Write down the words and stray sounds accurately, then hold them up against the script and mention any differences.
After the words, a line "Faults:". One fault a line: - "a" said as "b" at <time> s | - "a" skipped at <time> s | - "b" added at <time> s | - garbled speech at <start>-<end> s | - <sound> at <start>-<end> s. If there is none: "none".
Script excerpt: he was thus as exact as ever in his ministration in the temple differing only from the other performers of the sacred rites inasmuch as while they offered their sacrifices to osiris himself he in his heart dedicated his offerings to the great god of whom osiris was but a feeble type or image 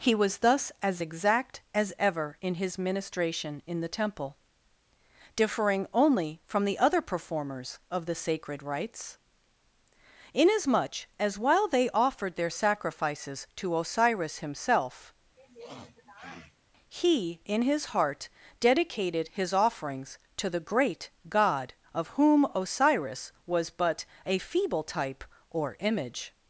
he was thus as exact as ever in his ministration in the temple differing only from the other performers of the sacred rites inasmuch as while they offered their sacrifices to osiris himself he in his heart dedicated his offerings to the great god of whom osiris was but a feeble type or image
Faults:
- sniff at 15.4-16.6 s